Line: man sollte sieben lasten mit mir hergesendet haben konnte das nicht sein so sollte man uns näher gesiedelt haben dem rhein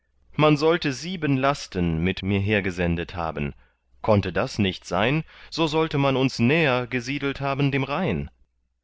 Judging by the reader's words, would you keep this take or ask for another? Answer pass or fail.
pass